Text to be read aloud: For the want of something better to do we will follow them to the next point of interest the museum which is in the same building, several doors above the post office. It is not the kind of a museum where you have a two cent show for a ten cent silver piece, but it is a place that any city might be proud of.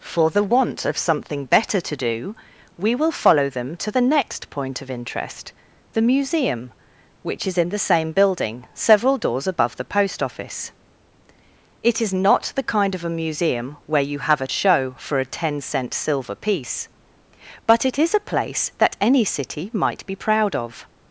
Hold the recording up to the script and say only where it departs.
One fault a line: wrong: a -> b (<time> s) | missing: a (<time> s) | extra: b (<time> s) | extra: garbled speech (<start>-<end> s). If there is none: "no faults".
missing: two cent (14.5 s)